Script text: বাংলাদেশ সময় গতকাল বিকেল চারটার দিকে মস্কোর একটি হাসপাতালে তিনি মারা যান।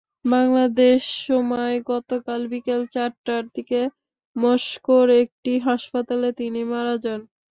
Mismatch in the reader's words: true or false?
false